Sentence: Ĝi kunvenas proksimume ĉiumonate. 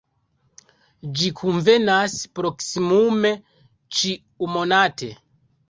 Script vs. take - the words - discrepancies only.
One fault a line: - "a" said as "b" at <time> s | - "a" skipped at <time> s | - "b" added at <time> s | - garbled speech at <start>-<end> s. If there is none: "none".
none